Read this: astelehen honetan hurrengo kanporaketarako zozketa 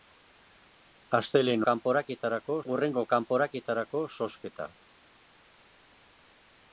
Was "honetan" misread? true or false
true